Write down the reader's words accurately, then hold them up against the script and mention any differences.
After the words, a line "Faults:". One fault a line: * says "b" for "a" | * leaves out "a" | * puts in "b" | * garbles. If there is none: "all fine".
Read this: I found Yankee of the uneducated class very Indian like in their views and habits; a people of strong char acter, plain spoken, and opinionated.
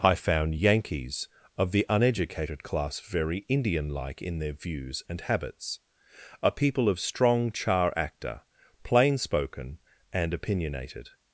I found Yankees of the uneducated class very Indian like in their views and habits; a people of strong char acter, plain spoken, and opinionated.
Faults:
* says "Yankees" for "Yankee"